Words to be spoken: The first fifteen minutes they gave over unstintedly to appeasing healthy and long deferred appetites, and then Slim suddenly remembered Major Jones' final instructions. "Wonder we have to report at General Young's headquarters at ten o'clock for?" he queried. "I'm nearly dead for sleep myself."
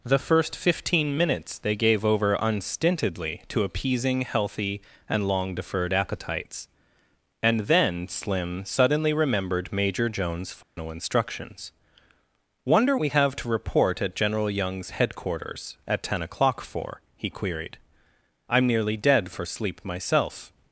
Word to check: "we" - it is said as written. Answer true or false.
true